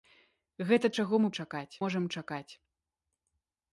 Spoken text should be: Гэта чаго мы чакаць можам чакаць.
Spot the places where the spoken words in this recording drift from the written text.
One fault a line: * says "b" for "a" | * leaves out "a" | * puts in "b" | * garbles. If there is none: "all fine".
all fine